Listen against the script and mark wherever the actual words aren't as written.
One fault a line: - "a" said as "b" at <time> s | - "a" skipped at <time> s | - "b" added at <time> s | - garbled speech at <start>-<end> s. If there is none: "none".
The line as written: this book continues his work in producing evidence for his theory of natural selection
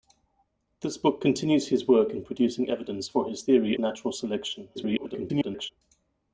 - "of" skipped at 3.8 s
- garbled speech at 4.7-5.7 s